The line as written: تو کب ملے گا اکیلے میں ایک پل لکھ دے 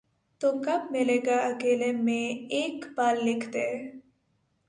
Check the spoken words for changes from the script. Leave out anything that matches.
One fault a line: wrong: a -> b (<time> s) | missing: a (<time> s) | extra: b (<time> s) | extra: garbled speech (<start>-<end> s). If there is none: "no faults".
no faults